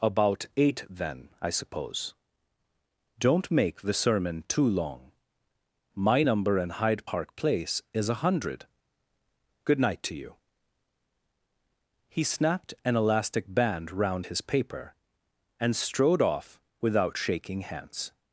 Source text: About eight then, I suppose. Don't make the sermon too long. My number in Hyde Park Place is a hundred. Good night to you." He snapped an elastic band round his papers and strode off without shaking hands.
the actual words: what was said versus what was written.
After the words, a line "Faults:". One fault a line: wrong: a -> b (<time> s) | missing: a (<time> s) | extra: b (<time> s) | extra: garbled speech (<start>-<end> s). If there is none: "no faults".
About eight then, I suppose. Don't make the sermon too long. My number in Hyde Park Place is a hundred. Good night to you." He snapped an elastic band round his paper and strode off without shaking hands.
Faults:
wrong: papers -> paper (14.4 s)